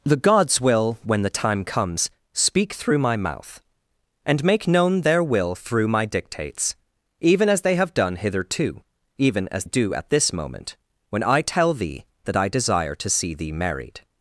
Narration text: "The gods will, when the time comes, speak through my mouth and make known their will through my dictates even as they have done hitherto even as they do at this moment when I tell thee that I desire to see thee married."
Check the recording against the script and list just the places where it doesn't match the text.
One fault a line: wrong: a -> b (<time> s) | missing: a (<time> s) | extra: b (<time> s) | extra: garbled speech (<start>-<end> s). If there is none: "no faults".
missing: they (9.7 s)